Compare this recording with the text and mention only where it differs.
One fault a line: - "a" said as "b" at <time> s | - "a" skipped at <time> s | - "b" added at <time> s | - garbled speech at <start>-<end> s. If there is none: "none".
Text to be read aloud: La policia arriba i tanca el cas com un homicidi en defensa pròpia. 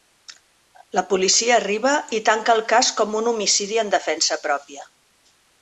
none